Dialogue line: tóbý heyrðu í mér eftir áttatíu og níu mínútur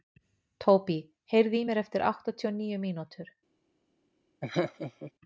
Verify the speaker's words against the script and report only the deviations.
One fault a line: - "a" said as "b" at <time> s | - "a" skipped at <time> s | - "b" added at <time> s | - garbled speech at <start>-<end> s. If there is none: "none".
none